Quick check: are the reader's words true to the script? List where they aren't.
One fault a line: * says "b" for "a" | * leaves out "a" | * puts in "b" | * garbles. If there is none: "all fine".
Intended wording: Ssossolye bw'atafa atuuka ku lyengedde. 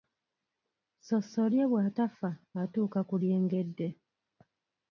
all fine